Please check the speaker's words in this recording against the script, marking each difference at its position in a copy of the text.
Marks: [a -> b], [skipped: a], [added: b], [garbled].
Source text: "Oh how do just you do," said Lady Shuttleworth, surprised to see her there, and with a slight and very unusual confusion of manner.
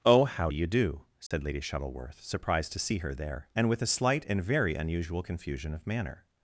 "Oh how do [skipped: just] you do," said Lady Shuttleworth, surprised to see her there, and with a slight and very unusual confusion of manner.